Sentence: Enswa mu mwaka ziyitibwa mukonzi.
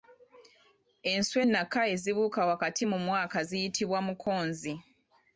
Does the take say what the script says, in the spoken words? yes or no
no